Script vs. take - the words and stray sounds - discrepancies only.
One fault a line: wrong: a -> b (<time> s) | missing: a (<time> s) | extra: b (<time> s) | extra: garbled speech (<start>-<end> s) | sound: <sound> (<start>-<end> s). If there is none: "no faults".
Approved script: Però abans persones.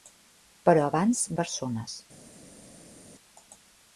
no faults